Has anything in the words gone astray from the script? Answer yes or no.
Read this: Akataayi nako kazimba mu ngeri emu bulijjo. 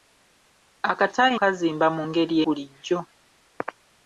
yes